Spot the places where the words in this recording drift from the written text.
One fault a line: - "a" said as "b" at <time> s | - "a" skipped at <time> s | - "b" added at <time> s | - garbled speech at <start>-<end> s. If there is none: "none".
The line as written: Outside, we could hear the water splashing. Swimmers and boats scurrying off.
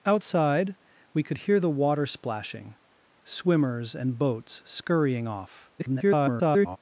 - garbled speech at 5.8-6.8 s